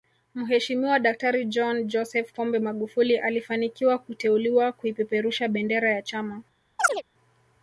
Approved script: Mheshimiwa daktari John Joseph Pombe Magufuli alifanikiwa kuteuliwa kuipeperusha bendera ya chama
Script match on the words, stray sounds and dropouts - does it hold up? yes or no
no